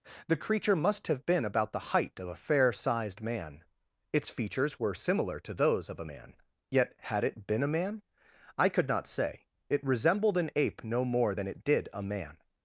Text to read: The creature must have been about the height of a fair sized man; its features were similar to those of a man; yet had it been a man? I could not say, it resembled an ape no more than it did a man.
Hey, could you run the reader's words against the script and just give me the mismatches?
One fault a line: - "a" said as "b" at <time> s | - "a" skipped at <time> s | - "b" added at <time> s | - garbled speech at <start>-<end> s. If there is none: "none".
none